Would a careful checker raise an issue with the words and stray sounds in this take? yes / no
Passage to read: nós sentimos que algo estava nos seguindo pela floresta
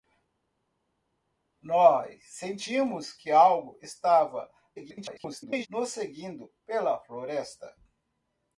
yes